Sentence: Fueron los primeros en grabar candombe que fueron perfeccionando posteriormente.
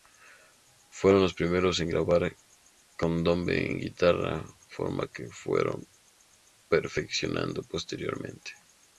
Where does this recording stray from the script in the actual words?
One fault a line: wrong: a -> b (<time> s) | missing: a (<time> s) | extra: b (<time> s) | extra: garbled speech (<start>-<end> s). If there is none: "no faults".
extra: en guitarra forma (3.7 s)